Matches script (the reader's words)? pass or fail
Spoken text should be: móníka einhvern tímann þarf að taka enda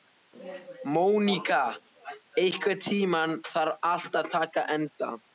fail